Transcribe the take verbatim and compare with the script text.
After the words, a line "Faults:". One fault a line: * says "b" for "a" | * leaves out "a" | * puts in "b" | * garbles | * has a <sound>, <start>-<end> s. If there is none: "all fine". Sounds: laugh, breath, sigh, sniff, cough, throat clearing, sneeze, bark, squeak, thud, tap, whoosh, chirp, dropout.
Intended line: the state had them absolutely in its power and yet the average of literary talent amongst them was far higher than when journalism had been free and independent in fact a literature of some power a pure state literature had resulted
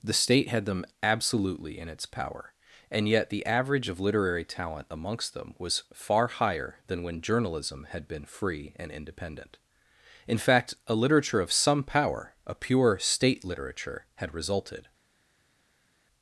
the state had them absolutely in its power and yet the average of literary talent amongst them was far higher than when journalism had been free and independent in fact a literature of some power a pure state literature had resulted
Faults:
all fine